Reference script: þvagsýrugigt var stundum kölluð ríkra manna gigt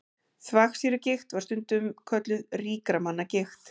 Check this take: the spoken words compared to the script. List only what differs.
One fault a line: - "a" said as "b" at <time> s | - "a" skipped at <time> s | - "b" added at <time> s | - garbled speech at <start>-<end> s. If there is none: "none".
none